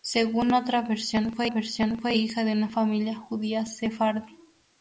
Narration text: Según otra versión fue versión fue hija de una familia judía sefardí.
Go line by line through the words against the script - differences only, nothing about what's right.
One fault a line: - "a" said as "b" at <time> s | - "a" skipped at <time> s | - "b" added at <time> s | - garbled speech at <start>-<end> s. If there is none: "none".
none